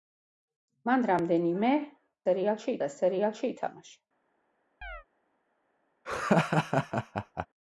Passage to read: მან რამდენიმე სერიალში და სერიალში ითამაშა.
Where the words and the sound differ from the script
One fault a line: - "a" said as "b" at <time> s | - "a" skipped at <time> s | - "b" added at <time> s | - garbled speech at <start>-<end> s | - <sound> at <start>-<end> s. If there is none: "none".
- chirp at 4.8-5.0 s
- laugh at 6.0-7.5 s